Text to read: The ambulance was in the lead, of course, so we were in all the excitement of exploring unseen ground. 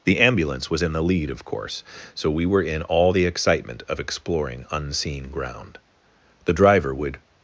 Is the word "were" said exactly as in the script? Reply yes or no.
yes